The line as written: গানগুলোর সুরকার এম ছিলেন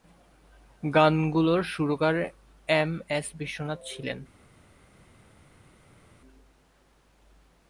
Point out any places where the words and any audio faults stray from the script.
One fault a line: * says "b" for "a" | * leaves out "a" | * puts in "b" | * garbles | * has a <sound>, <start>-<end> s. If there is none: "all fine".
* puts in "এস বিশ্বনাথ"